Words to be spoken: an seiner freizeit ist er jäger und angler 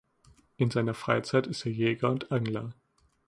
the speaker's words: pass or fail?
fail